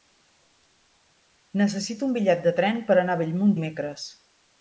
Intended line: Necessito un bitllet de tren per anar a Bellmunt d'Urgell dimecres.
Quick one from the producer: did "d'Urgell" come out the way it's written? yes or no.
no